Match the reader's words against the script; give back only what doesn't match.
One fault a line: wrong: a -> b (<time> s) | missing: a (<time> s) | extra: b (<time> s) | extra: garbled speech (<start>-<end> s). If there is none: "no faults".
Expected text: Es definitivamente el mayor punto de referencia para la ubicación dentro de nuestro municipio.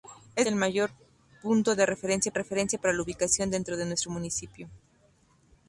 missing: definitivamente (0.5 s)
extra: referencia (2.3 s)